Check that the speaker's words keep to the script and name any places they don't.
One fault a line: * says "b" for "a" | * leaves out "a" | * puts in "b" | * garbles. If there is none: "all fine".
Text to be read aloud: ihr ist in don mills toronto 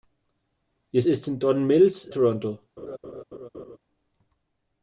all fine